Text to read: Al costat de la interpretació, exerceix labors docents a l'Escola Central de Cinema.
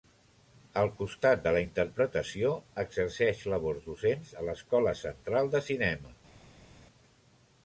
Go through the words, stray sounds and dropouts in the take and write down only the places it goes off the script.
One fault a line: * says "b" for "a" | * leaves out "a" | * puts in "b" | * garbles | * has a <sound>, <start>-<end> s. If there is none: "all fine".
all fine